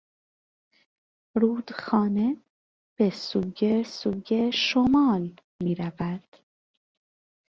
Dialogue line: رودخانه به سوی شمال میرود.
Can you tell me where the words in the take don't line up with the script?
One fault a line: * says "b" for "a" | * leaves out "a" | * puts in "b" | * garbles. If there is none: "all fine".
* puts in "سوی"